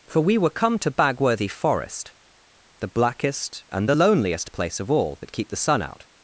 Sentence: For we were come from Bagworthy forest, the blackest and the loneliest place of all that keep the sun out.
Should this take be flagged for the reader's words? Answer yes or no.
yes